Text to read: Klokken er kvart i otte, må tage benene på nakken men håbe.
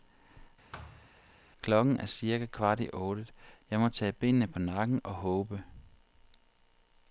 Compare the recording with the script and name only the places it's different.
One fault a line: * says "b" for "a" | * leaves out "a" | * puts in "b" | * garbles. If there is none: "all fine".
* puts in "cirka"
* puts in "jeg"
* says "og" for "men"